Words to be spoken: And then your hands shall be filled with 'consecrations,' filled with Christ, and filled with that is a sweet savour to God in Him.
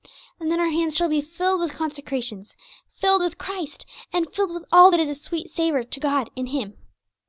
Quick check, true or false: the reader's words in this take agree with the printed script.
false